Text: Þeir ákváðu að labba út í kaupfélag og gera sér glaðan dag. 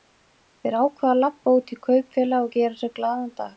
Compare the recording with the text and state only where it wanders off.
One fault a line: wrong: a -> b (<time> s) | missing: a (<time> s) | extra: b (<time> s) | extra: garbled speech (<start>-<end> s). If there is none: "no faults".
no faults